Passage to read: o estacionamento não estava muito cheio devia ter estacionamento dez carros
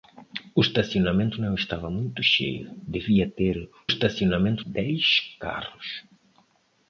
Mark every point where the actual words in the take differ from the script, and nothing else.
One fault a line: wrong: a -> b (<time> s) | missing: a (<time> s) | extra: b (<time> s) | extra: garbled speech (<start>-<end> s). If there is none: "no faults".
no faults